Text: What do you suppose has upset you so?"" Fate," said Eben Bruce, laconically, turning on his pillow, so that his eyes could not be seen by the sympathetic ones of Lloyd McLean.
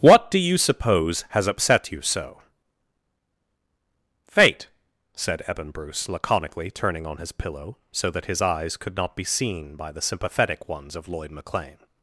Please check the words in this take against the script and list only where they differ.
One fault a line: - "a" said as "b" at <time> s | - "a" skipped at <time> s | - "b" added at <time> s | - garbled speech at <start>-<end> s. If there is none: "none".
none